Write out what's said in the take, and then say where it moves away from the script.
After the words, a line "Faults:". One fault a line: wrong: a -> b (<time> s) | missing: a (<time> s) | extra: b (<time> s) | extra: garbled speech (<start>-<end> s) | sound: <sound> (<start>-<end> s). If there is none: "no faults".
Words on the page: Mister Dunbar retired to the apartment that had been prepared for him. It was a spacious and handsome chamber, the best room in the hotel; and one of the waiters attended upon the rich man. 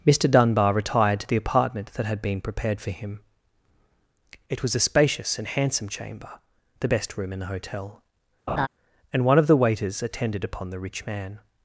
Mister Dunbar retired to the apartment that had been prepared for him. It was a spacious and handsome chamber, the best room in the hotel; and one of the waiters attended upon the rich man.
Faults:
sound: laugh (8.5-8.7 s)